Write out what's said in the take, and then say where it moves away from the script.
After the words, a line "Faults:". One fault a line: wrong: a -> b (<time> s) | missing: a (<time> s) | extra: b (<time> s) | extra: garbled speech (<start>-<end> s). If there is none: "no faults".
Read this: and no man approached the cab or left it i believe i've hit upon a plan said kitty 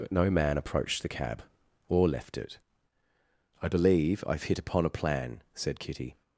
but no man approached the cab or left it i believe i've hit upon a plan said kitty
Faults:
wrong: and -> but (0.0 s)